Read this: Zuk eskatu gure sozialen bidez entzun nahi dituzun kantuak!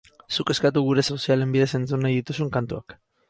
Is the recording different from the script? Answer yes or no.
no